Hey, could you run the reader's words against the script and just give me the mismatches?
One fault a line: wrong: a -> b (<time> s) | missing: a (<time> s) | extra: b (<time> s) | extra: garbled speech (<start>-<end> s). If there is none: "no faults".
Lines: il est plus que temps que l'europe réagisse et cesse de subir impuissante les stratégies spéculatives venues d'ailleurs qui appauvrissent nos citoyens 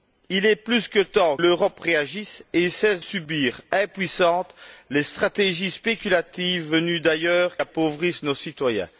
missing: que (1.4 s)
missing: de (3.0 s)
missing: qui (7.6 s)